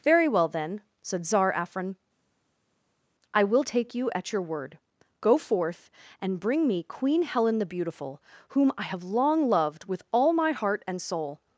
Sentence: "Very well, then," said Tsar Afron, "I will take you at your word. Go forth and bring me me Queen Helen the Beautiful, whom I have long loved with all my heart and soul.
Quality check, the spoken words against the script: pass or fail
fail